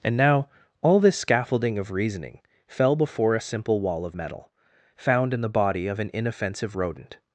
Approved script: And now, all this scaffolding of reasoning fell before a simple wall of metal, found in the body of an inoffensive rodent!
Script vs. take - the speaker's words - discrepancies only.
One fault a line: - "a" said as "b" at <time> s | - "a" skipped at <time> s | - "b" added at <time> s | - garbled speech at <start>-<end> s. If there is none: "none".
none